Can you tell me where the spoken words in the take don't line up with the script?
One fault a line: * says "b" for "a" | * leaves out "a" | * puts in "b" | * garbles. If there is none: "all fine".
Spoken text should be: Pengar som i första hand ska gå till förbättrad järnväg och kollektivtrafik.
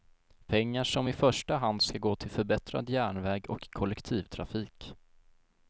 all fine